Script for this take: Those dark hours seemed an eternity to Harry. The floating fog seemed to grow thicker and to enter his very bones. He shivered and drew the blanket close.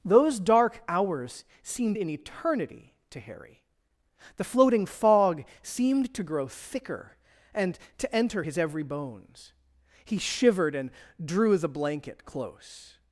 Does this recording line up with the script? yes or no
no